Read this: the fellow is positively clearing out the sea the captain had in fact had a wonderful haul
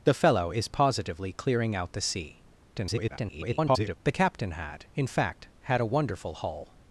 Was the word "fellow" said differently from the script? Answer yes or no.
no